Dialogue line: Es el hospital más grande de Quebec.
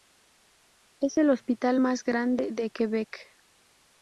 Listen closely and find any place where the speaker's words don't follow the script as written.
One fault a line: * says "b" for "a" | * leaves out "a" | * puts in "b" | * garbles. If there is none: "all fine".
all fine